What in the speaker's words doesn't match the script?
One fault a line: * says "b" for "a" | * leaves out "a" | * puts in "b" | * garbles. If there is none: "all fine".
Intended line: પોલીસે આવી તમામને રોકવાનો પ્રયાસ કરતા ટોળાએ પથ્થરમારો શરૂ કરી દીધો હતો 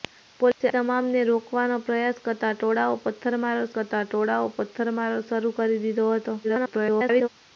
* leaves out "આવી"
* puts in "કરતા ટોળાએ પથ્થરમારો"
* garbles